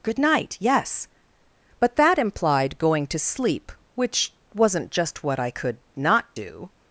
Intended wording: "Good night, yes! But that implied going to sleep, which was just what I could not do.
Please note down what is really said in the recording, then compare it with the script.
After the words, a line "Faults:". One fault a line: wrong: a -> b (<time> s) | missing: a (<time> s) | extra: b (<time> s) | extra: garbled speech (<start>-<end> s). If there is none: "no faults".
"Good night, yes! But that implied going to sleep, which wasn't just what I could not do.
Faults:
wrong: was -> wasn't (4.5 s)